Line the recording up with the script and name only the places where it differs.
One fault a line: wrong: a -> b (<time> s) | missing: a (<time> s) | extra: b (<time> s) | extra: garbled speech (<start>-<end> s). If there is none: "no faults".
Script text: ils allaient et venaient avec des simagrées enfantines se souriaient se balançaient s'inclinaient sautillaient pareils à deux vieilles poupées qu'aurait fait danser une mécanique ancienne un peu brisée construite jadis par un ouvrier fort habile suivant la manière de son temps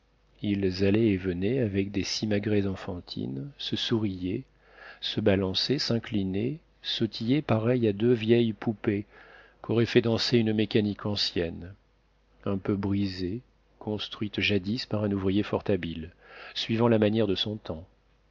no faults